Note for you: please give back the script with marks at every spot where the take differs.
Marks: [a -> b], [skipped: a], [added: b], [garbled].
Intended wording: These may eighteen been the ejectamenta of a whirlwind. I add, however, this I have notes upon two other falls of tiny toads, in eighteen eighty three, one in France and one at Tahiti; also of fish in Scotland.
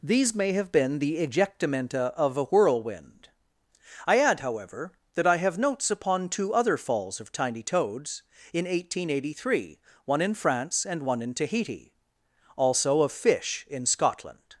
These may [eighteen -> have] been the ejectamenta of a whirlwind. I add, however, [this -> that] I have notes upon two other falls of tiny toads, in eighteen eighty three, one in France and one [at -> in] Tahiti; also of fish in Scotland.